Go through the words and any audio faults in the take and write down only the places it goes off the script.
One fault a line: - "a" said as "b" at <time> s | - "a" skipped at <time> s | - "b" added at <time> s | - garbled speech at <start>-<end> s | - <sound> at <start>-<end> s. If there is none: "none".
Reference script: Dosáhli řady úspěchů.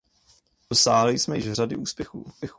- "jsme již" added at 1.2 s